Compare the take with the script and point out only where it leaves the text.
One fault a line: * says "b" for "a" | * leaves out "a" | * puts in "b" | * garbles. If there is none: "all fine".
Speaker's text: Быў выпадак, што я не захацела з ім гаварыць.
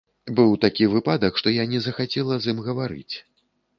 * puts in "такі"